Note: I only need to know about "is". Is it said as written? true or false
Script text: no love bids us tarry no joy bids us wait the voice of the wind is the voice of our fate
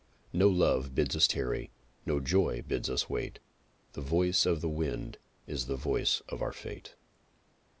true